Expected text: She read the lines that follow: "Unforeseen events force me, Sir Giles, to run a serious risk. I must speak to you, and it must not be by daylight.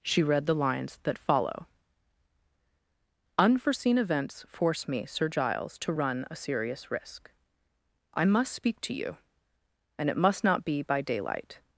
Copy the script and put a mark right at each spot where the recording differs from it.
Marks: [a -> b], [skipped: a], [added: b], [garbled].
She read the lines that follow: "Unforeseen events force me, Sir Giles, to run a serious risk. I must speak to you, and it must not be by daylight.